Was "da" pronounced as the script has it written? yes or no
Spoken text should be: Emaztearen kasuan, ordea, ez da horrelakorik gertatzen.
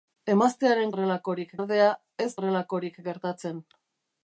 no